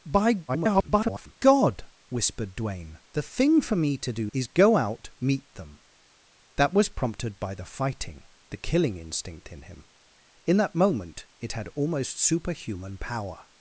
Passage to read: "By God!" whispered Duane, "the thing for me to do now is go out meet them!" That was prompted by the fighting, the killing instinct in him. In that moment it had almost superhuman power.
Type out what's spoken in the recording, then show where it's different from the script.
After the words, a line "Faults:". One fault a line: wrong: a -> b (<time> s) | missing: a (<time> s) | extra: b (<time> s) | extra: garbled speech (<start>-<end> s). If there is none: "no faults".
"By [garbled] God!" whispered Duane, "the thing for me to do is go out meet them!" That was prompted by the fighting, the killing instinct in him. In that moment it had almost superhuman power.
Faults:
extra: garbled speech (0.5-1.4 s)
missing: now (4.3 s)